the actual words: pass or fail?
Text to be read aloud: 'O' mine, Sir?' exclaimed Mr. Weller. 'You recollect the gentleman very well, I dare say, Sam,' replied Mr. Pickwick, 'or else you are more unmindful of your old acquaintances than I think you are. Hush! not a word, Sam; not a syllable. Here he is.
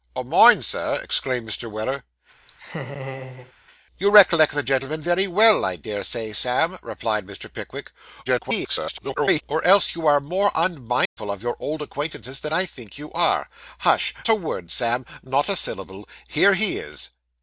fail